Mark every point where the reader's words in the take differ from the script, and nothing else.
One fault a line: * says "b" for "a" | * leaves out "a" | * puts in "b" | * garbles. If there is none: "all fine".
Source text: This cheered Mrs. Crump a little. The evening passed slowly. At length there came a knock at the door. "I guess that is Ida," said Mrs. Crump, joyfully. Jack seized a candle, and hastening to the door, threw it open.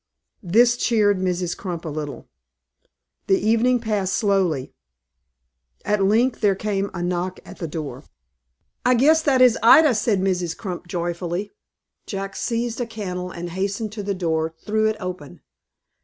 all fine